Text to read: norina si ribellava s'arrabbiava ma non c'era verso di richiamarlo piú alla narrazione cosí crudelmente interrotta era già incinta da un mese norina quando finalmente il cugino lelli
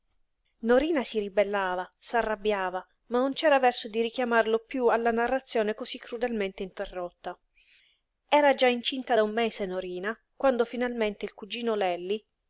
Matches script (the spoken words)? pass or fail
pass